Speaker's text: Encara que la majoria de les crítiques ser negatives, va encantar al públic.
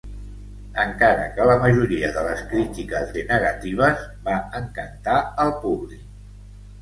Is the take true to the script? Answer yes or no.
yes